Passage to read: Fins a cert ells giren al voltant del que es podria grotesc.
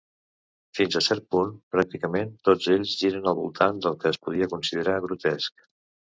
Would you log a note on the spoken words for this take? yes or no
yes